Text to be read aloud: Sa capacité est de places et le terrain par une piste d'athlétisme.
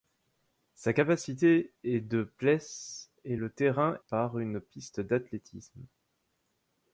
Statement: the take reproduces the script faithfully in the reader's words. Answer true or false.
true